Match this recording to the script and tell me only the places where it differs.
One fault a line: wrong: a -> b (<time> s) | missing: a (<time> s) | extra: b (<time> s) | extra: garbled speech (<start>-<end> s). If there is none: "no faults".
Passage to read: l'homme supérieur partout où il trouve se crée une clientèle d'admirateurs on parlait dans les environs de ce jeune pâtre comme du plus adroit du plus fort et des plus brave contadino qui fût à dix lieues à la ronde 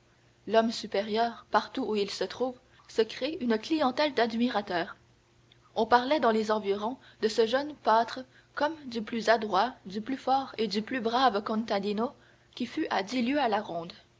extra: se (2.1 s)
wrong: des -> du (10.7 s)